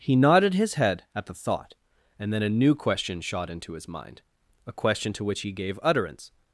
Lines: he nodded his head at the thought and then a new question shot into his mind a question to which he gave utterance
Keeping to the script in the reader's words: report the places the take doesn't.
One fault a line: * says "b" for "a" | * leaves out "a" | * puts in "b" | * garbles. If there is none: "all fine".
all fine